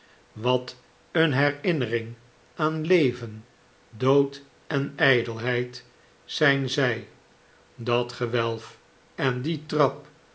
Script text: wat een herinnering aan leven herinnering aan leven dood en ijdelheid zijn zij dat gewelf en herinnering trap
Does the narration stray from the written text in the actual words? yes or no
yes